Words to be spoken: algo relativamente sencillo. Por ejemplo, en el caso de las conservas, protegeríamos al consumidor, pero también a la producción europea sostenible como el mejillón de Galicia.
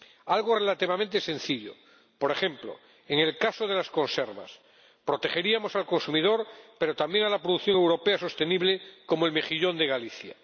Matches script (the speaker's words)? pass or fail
pass